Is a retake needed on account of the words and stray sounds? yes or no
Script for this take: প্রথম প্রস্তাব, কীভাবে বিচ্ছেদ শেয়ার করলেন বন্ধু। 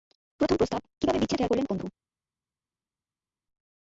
no